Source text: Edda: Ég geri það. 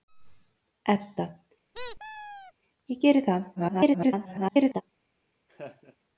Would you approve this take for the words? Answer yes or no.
no